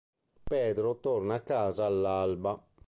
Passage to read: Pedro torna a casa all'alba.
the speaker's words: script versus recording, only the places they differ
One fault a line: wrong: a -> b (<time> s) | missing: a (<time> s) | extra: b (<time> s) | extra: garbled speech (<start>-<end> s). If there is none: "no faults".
no faults